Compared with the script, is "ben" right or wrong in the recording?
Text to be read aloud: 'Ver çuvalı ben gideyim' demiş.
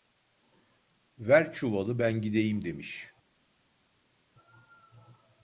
right